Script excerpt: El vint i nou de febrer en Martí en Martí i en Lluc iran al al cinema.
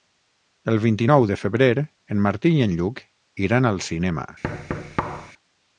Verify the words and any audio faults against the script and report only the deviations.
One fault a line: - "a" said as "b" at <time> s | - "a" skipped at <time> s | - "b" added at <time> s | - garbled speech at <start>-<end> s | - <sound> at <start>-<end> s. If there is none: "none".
- "en Martí" skipped at 2.5 s
- "al" skipped at 3.8 s
- thud at 4.4-5.3 s